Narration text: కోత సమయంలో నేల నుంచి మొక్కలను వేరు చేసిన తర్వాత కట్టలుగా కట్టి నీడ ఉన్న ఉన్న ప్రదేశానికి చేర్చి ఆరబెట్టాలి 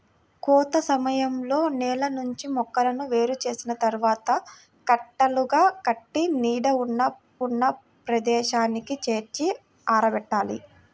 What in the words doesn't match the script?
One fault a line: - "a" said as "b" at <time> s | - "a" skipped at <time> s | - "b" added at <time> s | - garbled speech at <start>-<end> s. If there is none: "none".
none